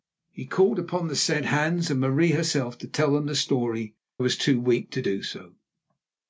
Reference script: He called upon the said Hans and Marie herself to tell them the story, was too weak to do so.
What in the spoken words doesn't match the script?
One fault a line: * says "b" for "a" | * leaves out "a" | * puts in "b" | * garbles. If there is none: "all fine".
all fine